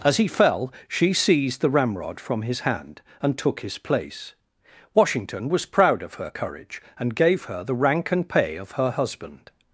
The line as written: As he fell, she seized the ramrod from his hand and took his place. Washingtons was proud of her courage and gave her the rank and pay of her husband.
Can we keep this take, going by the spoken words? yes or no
no